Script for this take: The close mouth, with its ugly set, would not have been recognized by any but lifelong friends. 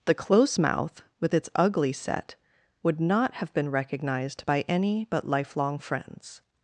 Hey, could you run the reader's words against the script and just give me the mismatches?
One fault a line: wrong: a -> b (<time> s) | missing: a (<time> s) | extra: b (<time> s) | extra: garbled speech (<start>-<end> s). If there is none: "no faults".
no faults